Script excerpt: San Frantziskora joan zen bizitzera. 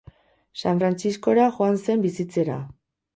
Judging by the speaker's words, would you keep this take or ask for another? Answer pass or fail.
pass